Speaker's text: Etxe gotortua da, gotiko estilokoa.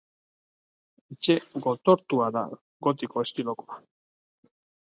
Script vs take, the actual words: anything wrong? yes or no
no